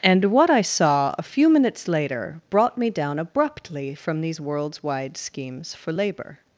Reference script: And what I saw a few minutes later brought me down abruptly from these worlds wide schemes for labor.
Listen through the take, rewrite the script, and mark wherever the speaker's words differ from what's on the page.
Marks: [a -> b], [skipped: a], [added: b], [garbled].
And what I saw a few minutes later brought me down abruptly from these worlds wide schemes for labor.